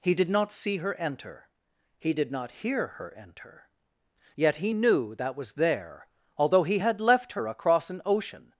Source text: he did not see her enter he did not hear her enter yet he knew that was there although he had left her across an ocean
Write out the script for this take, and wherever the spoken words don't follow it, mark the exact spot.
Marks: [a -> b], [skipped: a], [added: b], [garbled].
he did not see her enter he did not hear her enter yet he knew that was there although he had left her across an ocean